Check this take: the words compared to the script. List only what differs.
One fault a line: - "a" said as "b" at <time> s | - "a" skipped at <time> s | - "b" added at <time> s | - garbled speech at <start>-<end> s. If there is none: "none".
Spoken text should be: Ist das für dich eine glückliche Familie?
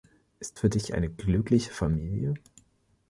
- "das" skipped at 0.6 s